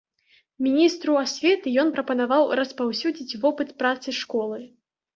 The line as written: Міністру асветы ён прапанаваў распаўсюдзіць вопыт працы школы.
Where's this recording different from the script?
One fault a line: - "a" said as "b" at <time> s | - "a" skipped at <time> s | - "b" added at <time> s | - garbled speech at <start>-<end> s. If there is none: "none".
none